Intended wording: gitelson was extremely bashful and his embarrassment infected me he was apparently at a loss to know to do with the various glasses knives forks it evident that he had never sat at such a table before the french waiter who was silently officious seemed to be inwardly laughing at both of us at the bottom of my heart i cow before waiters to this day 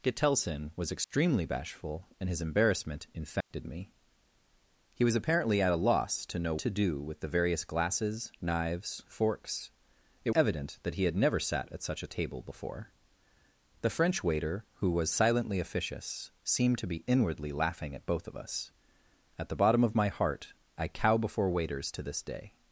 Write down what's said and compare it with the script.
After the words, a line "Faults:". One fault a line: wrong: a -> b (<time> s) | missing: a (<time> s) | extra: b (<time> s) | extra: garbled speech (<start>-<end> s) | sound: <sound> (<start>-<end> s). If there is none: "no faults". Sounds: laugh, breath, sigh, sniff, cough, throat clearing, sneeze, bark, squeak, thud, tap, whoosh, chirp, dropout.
gitelson was extremely bashful and his embarrassment infected me he was apparently at a loss to know to do with the various glasses knives forks it evident that he had never sat at such a table before the french waiter who was silently officious seemed to be inwardly laughing at both of us at the bottom of my heart i cow before waiters to this day
Faults:
sound: dropout (1.0-1.1 s)
sound: dropout (3.4-3.5 s)